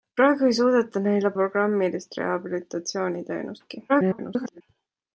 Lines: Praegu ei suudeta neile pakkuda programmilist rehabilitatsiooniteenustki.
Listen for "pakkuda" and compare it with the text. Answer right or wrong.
wrong